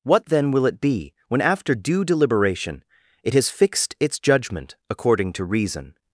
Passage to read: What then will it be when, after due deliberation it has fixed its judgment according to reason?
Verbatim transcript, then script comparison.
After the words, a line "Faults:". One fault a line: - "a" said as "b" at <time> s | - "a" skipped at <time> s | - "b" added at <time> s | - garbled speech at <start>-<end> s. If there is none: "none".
What then will it be when, after due deliberation it has fixed its judgment according to reason?
Faults:
none